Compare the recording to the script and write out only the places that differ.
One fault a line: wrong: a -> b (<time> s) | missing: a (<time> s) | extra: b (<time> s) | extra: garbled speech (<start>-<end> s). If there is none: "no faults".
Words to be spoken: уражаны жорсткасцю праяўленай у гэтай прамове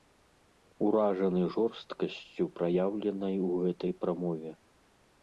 no faults